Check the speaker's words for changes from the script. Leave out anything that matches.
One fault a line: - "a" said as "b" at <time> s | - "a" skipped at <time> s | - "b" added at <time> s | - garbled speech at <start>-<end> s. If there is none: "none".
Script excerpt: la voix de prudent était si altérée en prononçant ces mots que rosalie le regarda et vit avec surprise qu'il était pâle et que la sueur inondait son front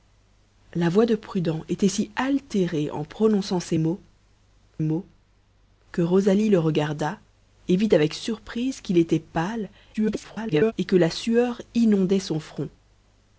- "mots" added at 4.8 s
- garbled speech at 9.9-10.7 s